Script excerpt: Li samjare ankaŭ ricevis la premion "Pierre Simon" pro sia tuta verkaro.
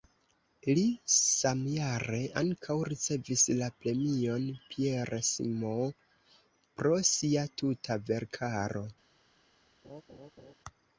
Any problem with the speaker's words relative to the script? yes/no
no